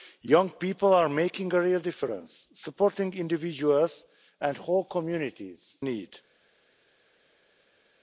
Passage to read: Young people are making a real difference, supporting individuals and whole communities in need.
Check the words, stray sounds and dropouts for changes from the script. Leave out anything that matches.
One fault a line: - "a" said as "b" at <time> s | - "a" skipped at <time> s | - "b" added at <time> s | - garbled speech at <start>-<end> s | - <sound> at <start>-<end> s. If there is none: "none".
- "in" skipped at 5.8 s